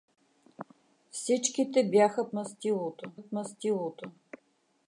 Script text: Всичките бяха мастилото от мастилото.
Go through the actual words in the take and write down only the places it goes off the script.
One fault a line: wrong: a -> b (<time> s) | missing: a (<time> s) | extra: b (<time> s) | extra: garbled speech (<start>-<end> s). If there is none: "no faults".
no faults